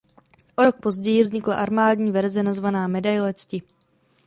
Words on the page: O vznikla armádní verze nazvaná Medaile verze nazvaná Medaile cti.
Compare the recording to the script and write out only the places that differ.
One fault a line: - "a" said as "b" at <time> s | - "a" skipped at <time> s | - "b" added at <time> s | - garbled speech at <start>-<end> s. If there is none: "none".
- "rok později" added at 0.6 s
- "verze nazvaná Medaile" skipped at 3.3 s